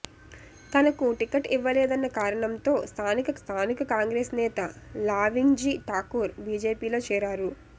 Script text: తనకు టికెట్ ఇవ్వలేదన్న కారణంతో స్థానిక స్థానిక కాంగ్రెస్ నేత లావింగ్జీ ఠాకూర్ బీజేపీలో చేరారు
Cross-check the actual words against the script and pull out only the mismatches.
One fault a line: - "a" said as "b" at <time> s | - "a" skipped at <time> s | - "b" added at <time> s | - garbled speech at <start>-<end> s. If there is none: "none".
none